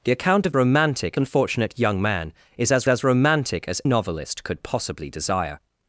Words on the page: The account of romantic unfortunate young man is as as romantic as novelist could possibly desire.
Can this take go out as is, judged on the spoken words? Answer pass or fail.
pass